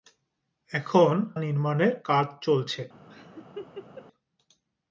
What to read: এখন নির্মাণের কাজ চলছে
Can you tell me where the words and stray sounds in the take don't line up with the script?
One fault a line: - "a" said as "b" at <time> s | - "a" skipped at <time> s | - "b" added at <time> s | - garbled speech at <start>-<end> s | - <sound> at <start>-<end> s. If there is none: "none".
- laugh at 3.1-4.1 s